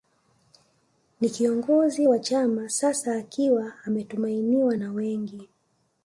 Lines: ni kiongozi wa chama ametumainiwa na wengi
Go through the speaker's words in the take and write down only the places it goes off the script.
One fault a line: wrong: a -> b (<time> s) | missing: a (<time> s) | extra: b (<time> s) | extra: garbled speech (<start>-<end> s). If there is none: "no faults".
extra: sasa akiwa (2.7 s)